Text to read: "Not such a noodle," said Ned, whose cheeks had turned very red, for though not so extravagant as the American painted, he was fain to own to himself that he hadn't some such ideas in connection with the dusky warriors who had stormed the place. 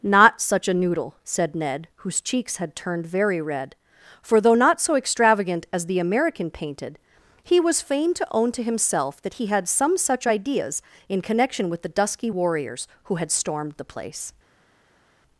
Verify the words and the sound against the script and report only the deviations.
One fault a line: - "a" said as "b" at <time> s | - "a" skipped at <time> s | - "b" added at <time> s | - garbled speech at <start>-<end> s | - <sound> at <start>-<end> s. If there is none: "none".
- "hadn't" said as "had" at 9.5 s